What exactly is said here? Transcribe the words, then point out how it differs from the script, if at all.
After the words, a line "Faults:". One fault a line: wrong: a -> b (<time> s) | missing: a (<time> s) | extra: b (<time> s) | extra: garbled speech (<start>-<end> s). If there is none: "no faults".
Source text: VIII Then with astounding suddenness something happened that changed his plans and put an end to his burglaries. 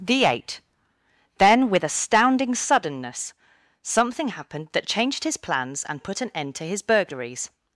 The eight Then with astounding suddenness something happened that changed his plans and put an end to his burglaries.
Faults:
wrong: VIII -> The eight (0.0 s)